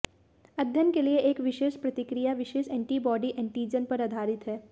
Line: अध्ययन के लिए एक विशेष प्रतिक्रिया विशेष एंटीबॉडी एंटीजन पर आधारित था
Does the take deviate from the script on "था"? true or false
true